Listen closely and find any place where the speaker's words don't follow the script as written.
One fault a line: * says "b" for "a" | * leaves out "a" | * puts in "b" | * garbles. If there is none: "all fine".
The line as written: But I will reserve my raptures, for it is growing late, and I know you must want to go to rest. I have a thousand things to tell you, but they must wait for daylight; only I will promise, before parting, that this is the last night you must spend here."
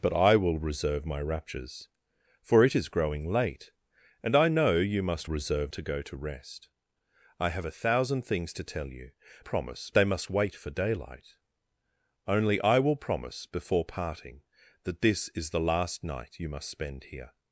* says "reserve" for "want"
* says "promise" for "but"